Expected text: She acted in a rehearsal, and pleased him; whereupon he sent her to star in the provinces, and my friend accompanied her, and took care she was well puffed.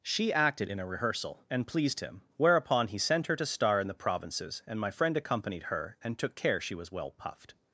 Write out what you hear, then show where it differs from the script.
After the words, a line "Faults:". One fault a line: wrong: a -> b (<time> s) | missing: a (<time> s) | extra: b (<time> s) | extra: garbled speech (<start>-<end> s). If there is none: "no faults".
She acted in a rehearsal, and pleased him; whereupon he sent her to star in the provinces, and my friend accompanied her, and took care she was well puffed.
Faults:
no faults